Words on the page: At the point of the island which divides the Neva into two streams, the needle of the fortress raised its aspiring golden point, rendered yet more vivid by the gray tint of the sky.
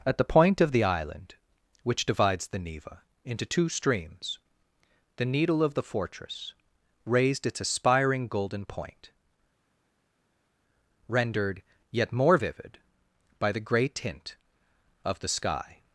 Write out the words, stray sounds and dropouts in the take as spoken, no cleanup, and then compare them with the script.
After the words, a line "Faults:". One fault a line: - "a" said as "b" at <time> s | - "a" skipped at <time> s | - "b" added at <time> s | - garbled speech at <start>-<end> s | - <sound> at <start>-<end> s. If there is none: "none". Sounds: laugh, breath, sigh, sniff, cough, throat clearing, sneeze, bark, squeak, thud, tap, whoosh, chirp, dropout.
At the point of the island which divides the Neva into two streams, the needle of the fortress raised its aspiring golden point, rendered yet more vivid by the gray tint of the sky.
Faults:
none